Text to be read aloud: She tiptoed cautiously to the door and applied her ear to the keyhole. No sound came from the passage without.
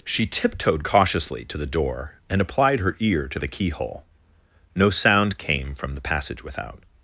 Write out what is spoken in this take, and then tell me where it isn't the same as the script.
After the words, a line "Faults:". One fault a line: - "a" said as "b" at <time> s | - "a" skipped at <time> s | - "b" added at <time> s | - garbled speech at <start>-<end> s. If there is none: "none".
She tiptoed cautiously to the door and applied her ear to the keyhole. No sound came from the passage without.
Faults:
none